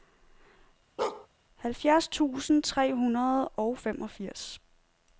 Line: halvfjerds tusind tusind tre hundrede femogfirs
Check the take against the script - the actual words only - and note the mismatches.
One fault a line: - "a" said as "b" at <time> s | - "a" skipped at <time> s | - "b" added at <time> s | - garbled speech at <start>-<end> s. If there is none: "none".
- "tusind" skipped at 2.6 s
- "og" added at 3.5 s